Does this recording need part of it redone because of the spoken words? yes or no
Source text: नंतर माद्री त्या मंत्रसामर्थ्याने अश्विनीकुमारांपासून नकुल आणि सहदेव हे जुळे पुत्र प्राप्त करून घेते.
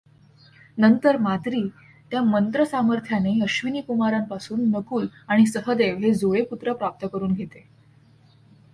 no